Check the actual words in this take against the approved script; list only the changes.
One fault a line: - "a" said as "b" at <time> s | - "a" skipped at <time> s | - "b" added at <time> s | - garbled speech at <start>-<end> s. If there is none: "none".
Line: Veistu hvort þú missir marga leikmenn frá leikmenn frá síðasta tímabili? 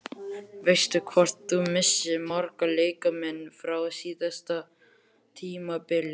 - "leikmenn frá" skipped at 3.8 s